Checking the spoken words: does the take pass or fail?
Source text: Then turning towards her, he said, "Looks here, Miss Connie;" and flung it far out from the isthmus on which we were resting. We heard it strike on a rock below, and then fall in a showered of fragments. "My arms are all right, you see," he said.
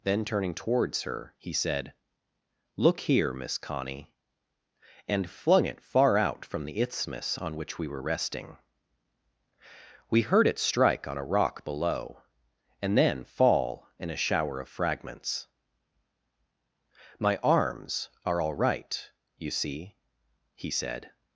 fail